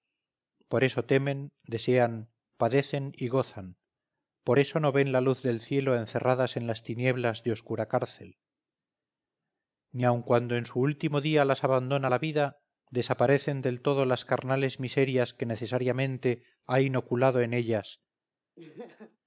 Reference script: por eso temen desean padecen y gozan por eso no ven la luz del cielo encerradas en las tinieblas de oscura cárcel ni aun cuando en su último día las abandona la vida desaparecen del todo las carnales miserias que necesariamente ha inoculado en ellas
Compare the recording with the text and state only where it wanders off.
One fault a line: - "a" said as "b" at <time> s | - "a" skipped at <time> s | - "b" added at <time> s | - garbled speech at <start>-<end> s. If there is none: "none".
none